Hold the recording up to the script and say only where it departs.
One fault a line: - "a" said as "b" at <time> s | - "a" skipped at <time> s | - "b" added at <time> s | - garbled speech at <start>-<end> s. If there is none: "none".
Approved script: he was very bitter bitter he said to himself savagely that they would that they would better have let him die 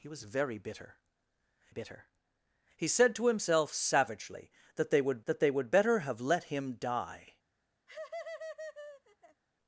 none